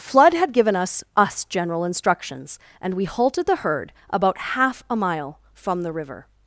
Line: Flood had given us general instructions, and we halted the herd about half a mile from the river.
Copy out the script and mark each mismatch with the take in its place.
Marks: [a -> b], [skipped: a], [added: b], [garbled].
Flood had given us [added: us] general instructions, and we halted the herd about half a mile from the river.